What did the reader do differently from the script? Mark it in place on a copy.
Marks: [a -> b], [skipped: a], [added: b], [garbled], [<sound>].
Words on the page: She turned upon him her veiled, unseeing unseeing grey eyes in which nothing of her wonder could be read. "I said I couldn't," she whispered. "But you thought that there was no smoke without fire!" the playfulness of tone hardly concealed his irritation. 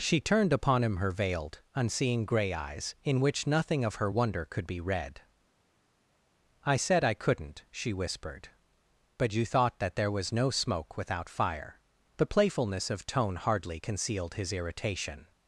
She turned upon him her veiled, unseeing [skipped: unseeing] grey eyes in which nothing of her wonder could be read. "I said I couldn't," she whispered. "But you thought that there was no smoke without fire!" the playfulness of tone hardly concealed his irritation.